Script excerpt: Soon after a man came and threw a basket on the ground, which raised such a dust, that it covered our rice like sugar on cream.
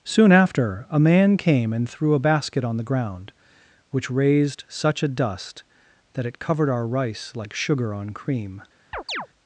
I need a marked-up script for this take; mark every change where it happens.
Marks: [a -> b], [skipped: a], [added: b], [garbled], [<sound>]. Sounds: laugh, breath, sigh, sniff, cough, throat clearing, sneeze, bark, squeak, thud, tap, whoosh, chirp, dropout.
Soon after a man came and threw a basket on the ground, which raised such a dust, that it covered our rice like sugar on cream. [chirp]